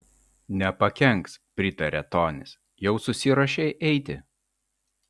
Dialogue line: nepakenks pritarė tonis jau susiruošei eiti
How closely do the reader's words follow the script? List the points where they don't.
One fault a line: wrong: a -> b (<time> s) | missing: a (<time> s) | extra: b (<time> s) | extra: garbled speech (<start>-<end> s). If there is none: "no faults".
no faults